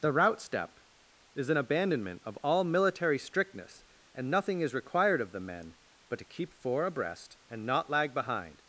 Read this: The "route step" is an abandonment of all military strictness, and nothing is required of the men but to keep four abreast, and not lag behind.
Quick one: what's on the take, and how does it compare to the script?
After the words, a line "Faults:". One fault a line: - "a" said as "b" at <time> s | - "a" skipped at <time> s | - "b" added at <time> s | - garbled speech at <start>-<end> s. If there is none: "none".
The "route step" is an abandonment of all military strictness, and nothing is required of the men but to keep four abreast, and not lag behind.
Faults:
none